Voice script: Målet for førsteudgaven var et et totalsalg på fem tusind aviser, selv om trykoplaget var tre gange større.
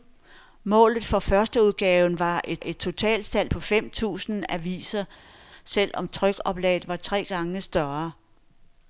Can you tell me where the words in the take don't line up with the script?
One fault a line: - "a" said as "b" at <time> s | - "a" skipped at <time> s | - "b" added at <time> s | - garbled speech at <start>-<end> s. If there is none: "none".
none